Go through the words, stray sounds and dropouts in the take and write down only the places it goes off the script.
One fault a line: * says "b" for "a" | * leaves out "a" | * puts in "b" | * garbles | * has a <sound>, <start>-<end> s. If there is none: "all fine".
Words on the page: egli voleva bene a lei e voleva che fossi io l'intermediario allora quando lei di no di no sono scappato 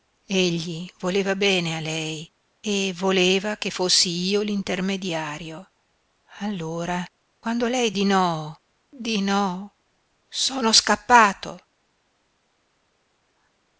all fine